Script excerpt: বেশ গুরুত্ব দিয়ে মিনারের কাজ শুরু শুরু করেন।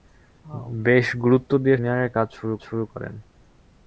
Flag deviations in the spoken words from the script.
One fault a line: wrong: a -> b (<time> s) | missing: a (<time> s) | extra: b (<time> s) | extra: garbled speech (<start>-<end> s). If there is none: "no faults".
no faults